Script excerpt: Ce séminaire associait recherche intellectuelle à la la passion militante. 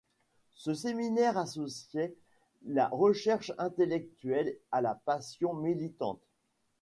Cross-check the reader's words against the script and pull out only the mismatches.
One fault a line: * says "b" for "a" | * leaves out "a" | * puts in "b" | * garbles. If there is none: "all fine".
* puts in "la"
* leaves out "la"